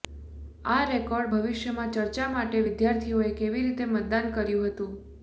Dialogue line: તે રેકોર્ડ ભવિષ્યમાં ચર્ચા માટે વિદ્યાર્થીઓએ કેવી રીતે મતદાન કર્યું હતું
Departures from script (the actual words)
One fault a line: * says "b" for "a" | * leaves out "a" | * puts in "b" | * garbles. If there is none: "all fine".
* says "આ" for "તે"